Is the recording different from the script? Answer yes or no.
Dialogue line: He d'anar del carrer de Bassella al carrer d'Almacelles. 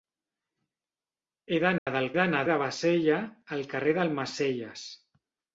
yes